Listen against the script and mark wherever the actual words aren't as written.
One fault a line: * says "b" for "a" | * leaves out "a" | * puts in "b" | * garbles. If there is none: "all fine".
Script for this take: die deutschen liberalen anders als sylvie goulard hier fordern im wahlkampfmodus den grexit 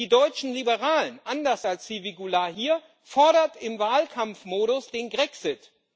all fine